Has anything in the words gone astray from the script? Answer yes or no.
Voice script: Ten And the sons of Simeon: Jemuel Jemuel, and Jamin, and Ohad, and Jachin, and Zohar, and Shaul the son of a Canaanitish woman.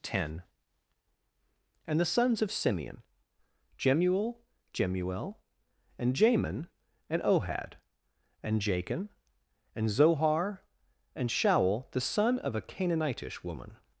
no